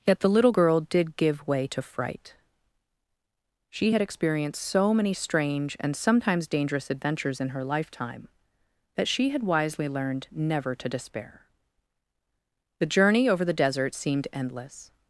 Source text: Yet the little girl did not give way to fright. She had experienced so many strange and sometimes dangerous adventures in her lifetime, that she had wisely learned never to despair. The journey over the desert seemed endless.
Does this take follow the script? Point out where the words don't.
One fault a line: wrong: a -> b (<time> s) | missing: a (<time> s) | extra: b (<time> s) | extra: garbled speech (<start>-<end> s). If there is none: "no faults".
missing: not (1.2 s)